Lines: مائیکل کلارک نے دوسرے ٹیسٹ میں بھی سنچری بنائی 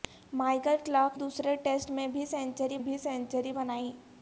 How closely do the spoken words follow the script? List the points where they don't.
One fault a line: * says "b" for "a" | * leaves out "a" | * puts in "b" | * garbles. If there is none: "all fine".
* leaves out "نے"
* puts in "بھی سنچری"